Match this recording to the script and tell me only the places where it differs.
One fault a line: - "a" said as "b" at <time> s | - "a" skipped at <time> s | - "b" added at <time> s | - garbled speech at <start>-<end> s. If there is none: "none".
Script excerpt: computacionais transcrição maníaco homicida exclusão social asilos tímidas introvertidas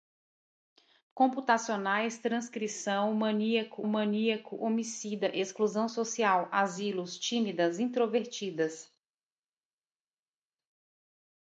- "maníaco" added at 3.9 s